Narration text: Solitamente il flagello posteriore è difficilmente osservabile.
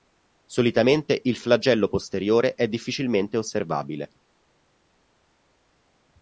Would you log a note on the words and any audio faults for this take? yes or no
no